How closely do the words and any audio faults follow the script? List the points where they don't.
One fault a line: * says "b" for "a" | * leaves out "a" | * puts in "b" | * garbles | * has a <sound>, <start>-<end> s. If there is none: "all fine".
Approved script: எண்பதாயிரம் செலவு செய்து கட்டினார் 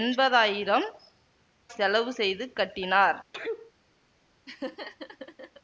* has a sneeze, 3.3-3.7 s
* has a laugh, 4.5-5.6 s